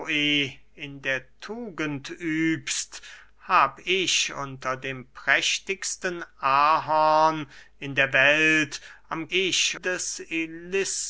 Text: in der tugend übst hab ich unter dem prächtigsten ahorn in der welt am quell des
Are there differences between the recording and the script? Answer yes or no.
yes